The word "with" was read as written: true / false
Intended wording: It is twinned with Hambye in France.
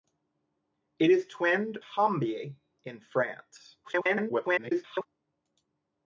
false